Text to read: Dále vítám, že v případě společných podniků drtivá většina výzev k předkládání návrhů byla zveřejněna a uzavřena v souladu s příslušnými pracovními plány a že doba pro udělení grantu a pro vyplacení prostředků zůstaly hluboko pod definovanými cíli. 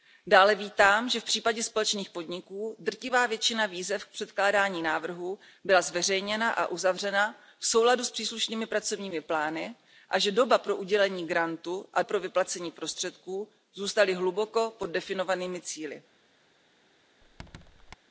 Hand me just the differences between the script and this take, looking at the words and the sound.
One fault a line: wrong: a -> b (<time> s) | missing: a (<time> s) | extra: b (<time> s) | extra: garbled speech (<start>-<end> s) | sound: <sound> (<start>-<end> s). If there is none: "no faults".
sound: squeak (17.2-18.0 s)